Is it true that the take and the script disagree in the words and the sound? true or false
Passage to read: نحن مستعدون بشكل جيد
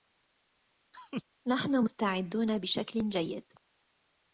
true